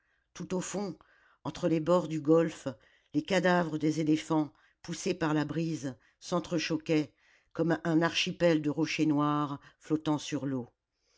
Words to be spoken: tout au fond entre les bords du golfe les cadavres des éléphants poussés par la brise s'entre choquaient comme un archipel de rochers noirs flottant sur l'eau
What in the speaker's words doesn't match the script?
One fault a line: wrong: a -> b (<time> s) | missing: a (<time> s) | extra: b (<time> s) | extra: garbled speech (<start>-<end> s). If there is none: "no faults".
no faults